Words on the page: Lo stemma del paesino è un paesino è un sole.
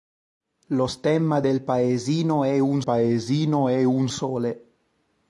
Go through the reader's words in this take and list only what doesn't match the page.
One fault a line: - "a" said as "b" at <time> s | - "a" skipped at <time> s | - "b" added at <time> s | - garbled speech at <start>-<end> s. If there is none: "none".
none